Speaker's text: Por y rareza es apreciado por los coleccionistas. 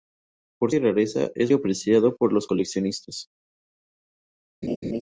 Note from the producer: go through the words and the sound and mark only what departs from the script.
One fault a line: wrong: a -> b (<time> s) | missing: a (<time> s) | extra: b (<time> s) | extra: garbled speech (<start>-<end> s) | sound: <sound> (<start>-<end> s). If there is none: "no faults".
sound: laugh (4.6-5.0 s)